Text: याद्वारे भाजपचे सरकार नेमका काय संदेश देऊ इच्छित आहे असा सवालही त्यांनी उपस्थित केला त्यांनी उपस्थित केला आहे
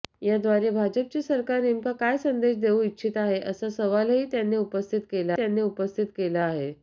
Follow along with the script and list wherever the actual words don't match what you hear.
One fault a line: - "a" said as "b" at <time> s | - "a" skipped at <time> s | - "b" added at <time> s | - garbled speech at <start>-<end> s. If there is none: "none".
none